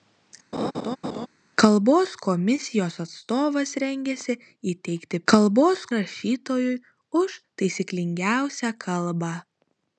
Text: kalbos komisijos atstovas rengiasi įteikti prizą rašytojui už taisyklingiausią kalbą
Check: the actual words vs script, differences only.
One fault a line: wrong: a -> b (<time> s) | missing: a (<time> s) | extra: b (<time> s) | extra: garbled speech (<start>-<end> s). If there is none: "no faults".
wrong: prizą -> kalbos (5.3 s)